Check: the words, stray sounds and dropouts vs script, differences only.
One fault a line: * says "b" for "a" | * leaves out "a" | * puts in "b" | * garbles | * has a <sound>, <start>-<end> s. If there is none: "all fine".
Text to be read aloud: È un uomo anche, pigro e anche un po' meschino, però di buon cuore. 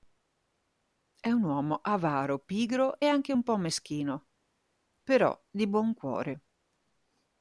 * says "avaro" for "anche"